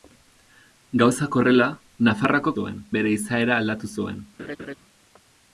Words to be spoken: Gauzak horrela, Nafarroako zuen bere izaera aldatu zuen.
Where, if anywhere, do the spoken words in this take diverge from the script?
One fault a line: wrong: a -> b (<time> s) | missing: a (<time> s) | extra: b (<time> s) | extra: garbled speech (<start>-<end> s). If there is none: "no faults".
no faults